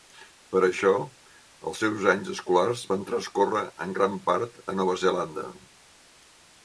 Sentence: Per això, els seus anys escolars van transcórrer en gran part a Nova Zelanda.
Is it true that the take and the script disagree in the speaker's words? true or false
false